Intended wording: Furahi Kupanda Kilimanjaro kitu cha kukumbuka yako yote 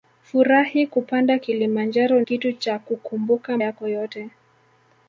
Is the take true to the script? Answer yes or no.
yes